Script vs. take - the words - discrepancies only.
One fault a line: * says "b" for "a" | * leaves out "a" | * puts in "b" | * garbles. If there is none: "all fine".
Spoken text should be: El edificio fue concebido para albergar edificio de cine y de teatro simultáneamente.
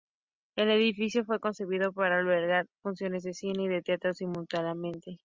* says "funciones" for "edificio"